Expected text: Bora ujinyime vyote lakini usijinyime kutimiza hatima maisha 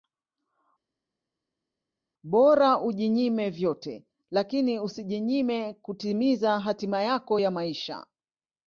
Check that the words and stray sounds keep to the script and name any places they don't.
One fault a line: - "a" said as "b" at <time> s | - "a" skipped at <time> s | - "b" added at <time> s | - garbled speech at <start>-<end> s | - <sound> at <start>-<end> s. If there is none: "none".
- "yako ya" added at 7.0 s